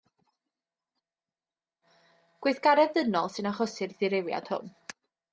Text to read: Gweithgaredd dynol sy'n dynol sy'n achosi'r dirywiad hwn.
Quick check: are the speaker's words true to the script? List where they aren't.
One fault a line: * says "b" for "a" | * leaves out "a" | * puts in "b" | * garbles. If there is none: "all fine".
* leaves out "dynol sy'n"